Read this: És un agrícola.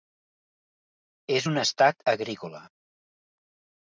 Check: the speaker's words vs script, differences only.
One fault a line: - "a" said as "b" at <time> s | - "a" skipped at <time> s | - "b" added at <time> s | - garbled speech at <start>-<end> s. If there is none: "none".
- "estat" added at 1.6 s